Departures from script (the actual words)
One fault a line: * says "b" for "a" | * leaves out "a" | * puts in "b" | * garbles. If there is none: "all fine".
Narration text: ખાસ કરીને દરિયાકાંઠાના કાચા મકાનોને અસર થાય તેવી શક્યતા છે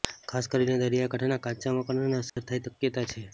* leaves out "તેવી"